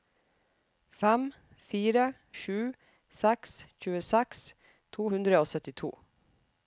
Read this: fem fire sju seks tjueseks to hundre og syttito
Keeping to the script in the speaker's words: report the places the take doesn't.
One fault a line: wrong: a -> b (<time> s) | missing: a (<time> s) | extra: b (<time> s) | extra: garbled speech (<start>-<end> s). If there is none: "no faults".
no faults